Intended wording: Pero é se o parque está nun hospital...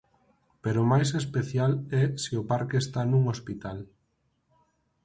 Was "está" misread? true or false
false